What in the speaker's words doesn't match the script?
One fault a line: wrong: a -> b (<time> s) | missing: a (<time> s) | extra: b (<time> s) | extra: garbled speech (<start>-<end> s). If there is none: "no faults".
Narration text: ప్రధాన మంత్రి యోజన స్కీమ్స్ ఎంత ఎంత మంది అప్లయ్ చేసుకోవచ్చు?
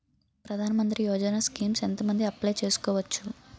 missing: ఎంత (2.0 s)